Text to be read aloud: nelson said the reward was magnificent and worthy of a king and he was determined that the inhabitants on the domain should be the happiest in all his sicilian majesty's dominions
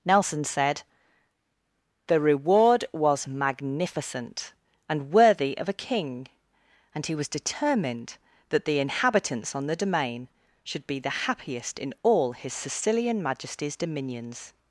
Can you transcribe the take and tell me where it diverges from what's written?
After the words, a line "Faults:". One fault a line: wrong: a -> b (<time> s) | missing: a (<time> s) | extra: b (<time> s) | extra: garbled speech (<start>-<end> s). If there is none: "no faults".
nelson said the reward was magnificent and worthy of a king and he was determined that the inhabitants on the domain should be the happiest in all his sicilian majesty's dominions
Faults:
no faults